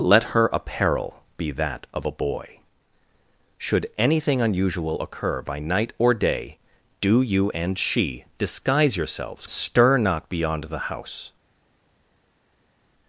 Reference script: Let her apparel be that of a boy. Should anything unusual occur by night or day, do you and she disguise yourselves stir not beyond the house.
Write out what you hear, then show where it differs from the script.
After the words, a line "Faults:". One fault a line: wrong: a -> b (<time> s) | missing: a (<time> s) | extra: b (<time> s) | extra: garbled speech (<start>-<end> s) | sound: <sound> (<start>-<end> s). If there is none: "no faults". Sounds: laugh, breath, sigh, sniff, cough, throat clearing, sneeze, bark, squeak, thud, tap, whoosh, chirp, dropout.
Let her apparel be that of a boy. Should anything unusual occur by night or day, do you and she disguise yourselves stir not beyond the house.
Faults:
no faults